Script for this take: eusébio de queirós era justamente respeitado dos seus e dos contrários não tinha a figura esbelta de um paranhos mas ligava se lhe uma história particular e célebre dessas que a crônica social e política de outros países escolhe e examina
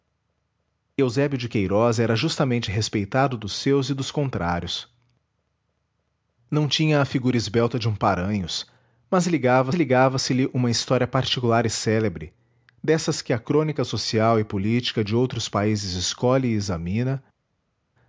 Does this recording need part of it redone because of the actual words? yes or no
yes